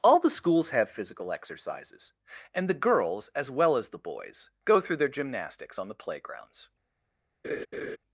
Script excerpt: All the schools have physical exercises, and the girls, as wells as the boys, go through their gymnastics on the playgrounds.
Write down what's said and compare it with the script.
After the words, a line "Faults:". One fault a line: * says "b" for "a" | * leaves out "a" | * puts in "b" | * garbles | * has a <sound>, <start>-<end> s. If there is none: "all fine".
All the schools have physical exercises, and the girls, as well as the boys, go through their gymnastics on the playgrounds.
Faults:
* says "well" for "wells"
* has a laugh, 7.4-8.0 s